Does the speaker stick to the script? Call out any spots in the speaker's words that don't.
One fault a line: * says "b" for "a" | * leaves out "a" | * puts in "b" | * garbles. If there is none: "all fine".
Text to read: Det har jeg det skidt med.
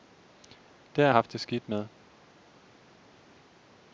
* puts in "haft"